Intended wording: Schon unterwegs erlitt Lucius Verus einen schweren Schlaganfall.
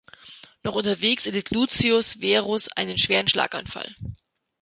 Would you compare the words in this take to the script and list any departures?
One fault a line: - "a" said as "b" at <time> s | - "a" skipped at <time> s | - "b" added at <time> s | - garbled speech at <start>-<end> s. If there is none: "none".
- "Schon" said as "Noch" at 0.6 s